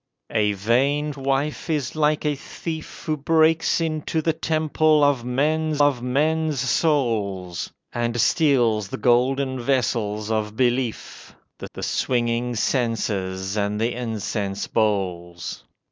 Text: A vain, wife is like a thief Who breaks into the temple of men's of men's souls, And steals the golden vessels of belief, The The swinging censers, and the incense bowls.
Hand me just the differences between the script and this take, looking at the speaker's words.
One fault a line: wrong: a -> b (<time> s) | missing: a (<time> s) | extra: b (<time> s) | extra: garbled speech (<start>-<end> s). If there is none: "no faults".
no faults